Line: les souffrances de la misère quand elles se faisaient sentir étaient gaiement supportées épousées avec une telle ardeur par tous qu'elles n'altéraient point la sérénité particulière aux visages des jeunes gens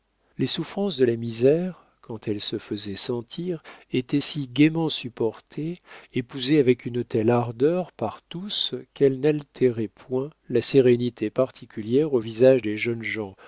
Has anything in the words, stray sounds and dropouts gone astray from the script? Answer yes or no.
yes